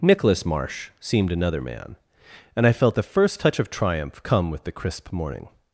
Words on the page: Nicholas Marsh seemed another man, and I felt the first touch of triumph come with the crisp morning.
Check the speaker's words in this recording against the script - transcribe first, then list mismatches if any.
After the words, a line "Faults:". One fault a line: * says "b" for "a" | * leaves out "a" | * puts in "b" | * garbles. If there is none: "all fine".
Nicholas Marsh seemed another man, and I felt the first touch of triumph come with the crisp morning.
Faults:
all fine